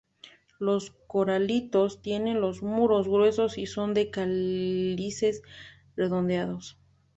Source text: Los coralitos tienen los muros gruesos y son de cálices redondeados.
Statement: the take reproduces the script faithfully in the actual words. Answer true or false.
true